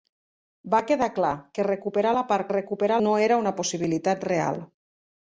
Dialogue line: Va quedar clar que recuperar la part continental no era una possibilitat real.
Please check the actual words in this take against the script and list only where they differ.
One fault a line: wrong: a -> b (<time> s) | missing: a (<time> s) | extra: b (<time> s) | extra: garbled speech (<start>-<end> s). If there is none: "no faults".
wrong: continental -> recuperar (2.5 s)